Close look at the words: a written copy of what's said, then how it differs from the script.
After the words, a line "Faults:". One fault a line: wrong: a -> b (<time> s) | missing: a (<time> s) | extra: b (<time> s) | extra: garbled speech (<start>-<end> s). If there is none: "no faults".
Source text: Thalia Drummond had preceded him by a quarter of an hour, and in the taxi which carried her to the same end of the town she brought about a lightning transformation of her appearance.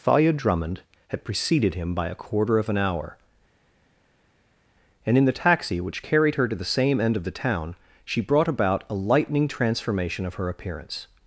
Thalia Drummond had preceded him by a quarter of an hour, and in the taxi which carried her to the same end of the town she brought about a lightning transformation of her appearance.
Faults:
no faults